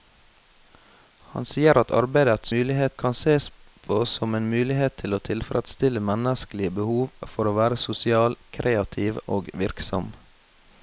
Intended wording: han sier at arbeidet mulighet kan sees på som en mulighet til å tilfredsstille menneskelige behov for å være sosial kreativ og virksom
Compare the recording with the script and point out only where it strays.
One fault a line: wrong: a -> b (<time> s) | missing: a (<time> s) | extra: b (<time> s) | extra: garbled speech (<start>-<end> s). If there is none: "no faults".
no faults